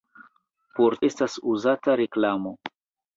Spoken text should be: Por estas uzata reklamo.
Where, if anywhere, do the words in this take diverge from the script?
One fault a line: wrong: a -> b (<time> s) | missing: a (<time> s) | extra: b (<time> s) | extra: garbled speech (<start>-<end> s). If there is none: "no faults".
no faults